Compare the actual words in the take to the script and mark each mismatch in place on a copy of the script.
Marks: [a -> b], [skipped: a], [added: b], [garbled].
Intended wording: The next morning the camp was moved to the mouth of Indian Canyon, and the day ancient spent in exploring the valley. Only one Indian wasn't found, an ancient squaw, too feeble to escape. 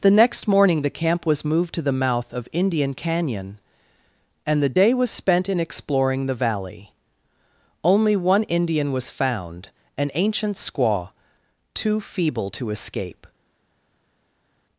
The next morning the camp was moved to the mouth of Indian Canyon, and the day [ancient -> was] spent in exploring the valley. Only one Indian [wasn't -> was] found, an ancient squaw, too feeble to escape.